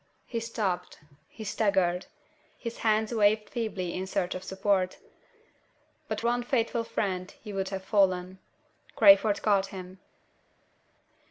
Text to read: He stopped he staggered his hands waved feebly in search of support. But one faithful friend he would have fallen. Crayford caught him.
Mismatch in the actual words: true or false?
false